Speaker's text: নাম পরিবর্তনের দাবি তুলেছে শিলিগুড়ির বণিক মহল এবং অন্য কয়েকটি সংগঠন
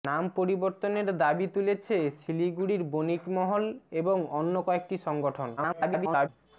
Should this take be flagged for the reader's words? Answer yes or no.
yes